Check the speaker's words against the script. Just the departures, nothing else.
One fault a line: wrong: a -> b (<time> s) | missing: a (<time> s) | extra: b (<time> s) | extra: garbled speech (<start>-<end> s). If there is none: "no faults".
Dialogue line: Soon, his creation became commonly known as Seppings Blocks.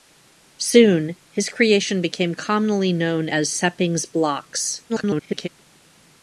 extra: garbled speech (4.9-5.5 s)